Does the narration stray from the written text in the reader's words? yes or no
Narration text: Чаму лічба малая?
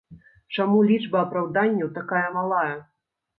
yes